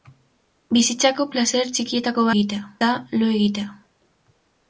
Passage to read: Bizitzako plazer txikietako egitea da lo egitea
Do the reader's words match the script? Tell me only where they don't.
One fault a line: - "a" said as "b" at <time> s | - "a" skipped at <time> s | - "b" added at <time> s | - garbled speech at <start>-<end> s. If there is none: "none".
none